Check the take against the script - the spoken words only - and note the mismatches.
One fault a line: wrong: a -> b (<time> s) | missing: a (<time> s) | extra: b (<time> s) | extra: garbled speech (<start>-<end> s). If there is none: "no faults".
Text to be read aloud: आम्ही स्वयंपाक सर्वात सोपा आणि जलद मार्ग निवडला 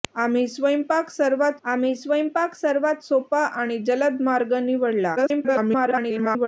extra: आम्ही स्वयंपाक सर्वात (1.6 s)
extra: garbled speech (5.2-6.5 s)